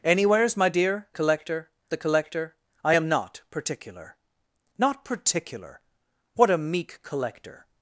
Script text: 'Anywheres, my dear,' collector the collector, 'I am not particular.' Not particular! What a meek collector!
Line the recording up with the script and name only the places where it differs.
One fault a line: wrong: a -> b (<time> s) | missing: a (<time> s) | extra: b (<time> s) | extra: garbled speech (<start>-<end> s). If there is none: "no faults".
no faults